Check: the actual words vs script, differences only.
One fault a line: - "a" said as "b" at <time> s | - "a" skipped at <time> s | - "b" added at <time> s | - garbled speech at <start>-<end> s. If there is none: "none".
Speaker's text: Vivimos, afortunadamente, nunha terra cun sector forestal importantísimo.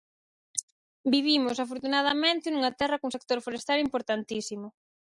none